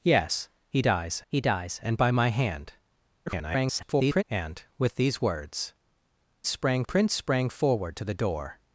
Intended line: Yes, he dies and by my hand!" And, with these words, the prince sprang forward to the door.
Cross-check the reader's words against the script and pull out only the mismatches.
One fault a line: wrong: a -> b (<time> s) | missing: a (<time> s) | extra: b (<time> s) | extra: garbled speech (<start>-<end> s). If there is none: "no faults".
extra: he dies (1.3 s)
extra: garbled speech (3.3-4.2 s)
wrong: the -> sprang (6.5 s)